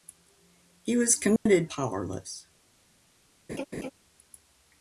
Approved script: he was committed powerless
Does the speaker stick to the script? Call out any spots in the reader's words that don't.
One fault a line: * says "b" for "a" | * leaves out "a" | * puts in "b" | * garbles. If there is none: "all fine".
all fine